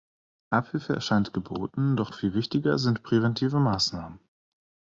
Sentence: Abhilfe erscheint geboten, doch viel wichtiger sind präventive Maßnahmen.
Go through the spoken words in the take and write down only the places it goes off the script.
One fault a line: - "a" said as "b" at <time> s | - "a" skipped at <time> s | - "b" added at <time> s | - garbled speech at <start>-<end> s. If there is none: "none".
none